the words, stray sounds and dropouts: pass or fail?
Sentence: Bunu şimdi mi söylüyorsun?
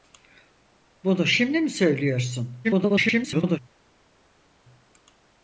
fail